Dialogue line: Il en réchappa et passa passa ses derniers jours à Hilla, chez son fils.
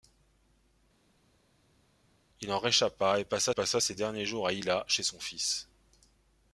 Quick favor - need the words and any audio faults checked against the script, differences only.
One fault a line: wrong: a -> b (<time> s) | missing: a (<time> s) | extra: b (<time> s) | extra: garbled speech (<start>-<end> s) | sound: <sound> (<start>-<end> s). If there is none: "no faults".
no faults